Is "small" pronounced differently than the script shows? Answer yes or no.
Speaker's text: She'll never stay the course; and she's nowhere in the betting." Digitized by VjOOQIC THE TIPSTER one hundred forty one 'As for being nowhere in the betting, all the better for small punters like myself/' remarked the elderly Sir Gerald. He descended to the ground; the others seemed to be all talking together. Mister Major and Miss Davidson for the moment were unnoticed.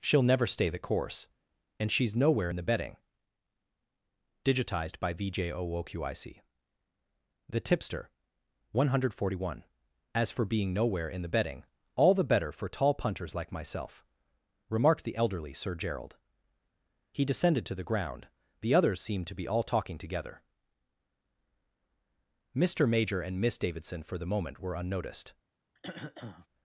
yes